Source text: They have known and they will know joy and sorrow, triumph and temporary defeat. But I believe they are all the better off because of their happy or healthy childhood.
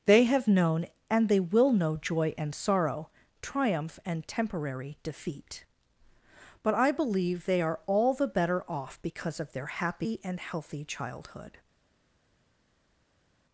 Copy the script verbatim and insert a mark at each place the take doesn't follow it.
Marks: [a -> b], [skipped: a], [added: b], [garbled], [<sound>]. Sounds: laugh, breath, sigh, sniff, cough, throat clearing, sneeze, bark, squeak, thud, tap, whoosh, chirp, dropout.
They have known and they will know joy and sorrow, triumph and temporary defeat. But I believe they are all the better off because of their happy [or -> and] healthy childhood.